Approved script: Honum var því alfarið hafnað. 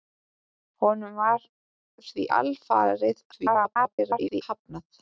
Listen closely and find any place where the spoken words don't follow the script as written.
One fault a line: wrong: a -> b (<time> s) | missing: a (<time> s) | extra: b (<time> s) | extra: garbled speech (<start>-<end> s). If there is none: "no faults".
extra: garbled speech (3.3-4.4 s)